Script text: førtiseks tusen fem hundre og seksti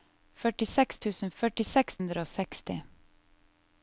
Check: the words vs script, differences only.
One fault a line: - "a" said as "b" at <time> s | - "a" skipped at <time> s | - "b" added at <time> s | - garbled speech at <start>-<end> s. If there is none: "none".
- "fem" said as "førtiseks" at 1.4 s